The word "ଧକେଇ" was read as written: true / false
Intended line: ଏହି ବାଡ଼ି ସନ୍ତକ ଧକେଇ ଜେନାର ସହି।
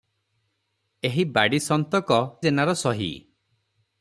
false